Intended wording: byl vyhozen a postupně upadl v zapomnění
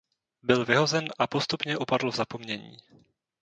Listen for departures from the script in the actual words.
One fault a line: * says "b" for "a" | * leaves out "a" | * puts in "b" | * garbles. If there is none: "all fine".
all fine